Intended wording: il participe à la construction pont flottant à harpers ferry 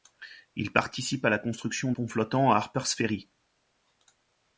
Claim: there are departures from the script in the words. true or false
false